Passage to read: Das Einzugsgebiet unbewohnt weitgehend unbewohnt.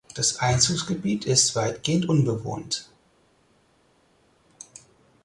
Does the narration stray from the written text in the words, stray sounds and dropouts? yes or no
yes